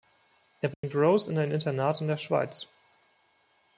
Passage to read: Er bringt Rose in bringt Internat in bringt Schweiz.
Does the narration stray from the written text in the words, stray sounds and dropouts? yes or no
yes